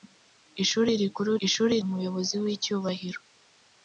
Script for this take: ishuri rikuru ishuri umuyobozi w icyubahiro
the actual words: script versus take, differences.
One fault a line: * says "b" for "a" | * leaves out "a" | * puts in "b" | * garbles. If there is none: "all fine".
all fine